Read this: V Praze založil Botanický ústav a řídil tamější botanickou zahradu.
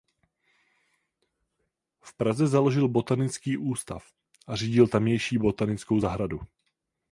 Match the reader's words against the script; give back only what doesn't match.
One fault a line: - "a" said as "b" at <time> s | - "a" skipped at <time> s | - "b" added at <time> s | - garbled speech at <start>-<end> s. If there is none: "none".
none